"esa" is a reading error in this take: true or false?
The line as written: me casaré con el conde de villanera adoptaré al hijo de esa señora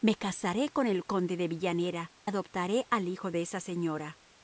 false